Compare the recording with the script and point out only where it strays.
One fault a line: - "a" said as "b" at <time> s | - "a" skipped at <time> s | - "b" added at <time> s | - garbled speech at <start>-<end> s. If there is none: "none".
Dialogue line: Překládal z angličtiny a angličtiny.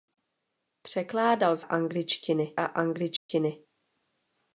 none